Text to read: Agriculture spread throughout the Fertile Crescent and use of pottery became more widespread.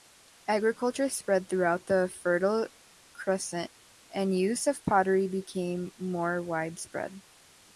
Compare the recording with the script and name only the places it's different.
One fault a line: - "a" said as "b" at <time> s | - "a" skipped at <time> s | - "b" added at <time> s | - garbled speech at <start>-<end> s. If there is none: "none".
none